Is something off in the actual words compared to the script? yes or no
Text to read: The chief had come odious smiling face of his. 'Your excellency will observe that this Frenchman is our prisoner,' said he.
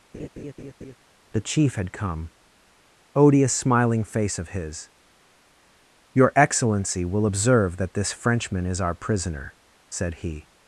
no